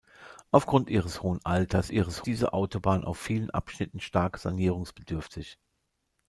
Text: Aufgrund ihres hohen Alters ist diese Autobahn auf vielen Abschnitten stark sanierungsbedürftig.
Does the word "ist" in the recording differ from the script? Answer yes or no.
yes